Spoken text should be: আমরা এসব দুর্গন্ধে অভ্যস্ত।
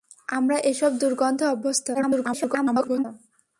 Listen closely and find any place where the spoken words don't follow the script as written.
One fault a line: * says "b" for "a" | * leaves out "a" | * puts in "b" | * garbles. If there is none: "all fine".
* garbles